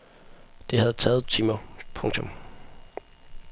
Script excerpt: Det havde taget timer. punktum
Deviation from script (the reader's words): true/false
false